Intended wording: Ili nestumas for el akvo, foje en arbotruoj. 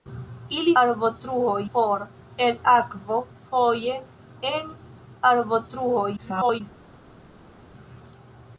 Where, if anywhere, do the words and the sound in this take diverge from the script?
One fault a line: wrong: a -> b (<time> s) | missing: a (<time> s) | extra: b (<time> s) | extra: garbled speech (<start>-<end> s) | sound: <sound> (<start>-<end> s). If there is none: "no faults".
wrong: nestumas -> arbotruoj (0.8 s)
extra: garbled speech (6.2-6.6 s)